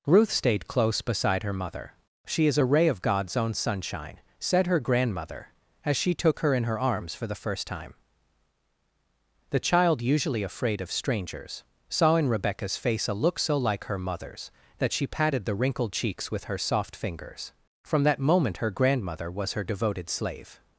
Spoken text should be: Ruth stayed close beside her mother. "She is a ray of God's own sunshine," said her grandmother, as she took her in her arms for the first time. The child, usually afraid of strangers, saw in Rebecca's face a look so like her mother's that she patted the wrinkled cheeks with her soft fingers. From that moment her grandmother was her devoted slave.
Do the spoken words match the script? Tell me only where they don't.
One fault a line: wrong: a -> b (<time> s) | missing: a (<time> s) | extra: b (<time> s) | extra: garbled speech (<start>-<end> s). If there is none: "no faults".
no faults